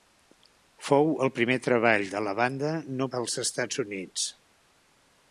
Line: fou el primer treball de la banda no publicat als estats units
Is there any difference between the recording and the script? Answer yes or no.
yes